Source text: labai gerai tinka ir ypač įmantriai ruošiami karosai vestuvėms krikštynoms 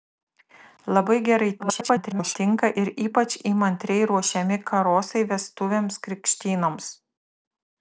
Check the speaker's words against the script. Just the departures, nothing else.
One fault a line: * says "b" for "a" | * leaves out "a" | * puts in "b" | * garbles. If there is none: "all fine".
* garbles